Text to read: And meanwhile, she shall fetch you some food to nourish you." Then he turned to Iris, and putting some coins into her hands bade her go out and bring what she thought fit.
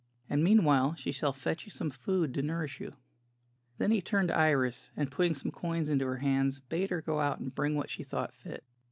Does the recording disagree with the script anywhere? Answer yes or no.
no